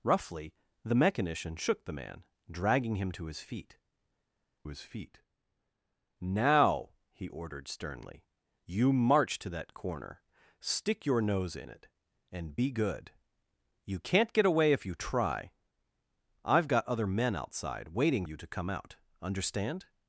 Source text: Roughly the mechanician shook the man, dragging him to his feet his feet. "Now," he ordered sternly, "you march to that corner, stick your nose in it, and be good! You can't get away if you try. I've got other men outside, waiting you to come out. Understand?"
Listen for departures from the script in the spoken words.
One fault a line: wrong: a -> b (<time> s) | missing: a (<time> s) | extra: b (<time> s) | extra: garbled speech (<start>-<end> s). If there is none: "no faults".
no faults